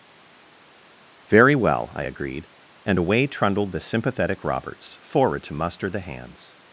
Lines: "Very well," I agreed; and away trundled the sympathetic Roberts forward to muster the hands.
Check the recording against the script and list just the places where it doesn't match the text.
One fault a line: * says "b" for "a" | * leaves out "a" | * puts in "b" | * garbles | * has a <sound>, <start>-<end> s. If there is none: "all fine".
all fine